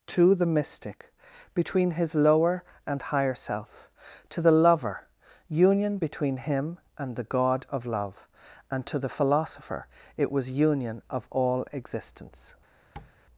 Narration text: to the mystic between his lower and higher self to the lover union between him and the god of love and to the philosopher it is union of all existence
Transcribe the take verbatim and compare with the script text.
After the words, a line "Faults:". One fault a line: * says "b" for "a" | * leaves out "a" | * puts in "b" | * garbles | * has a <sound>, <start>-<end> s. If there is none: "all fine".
to the mystic between his lower and higher self to the lover union between him and the god of love and to the philosopher it was union of all existence
Faults:
* says "was" for "is"
* has a tap, 13.0-13.1 s